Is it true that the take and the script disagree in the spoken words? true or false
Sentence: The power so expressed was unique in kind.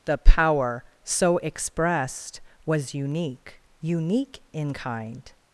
true